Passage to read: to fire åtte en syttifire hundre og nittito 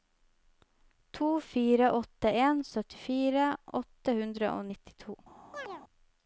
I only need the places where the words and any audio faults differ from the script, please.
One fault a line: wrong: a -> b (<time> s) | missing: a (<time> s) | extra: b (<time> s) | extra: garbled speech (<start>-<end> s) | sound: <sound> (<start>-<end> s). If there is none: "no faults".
extra: åtte (3.8 s)
sound: chirp (5.5-5.8 s)